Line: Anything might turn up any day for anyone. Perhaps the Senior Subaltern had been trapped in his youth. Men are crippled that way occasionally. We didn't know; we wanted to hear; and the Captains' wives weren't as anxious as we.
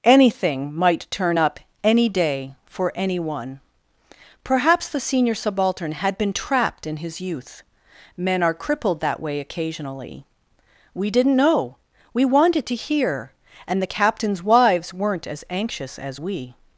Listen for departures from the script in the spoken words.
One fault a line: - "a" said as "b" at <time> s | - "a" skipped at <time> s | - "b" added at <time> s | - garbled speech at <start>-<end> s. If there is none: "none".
none